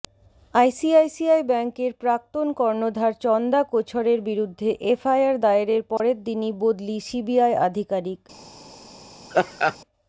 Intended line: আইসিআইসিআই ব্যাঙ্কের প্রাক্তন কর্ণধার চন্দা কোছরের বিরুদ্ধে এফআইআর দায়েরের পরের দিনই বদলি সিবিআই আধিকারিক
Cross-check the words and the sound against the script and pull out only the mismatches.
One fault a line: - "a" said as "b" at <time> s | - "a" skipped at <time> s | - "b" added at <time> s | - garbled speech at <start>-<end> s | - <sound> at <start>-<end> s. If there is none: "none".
- dropout at 6.0-6.0 s
- laugh at 9.3-9.8 s